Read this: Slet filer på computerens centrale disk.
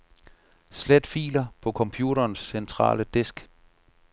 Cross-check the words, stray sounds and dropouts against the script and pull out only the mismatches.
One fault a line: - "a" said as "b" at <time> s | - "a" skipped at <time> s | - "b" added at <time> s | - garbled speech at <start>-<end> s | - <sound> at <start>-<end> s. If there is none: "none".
none